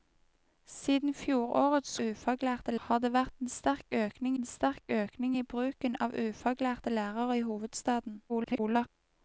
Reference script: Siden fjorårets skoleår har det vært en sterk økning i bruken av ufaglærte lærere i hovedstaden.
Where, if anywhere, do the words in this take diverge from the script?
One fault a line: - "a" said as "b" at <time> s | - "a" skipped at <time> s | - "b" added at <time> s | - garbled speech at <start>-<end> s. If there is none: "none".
- "skoleår" said as "ufaglærte" at 2.0 s
- "en sterk økning" added at 4.4 s
- garbled speech at 8.3-8.9 s